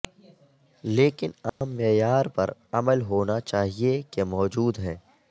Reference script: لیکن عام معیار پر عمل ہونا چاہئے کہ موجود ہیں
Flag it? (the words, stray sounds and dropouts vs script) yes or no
yes